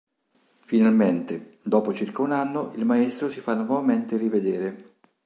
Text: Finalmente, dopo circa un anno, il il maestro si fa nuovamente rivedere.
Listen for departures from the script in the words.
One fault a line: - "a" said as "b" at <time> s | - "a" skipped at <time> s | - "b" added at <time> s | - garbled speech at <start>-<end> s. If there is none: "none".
- "il" skipped at 2.9 s